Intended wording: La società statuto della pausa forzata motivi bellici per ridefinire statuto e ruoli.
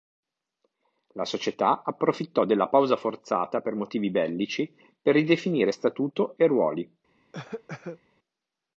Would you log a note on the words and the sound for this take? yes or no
yes